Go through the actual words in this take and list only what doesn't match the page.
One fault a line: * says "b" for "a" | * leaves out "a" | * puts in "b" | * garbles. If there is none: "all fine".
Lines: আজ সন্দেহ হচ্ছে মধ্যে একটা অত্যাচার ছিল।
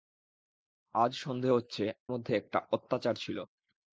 all fine